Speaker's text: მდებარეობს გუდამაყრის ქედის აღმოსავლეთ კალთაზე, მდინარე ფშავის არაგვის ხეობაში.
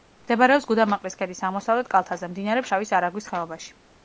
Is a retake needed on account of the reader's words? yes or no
no